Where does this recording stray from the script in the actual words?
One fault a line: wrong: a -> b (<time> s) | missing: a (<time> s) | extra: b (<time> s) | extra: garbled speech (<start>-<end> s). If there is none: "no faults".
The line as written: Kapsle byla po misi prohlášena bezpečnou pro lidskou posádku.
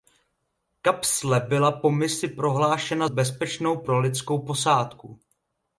no faults